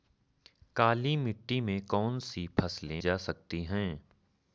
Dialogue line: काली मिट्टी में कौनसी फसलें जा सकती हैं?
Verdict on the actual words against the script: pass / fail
pass